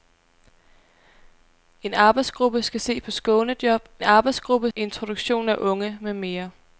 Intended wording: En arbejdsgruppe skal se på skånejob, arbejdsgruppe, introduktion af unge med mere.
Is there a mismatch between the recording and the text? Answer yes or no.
no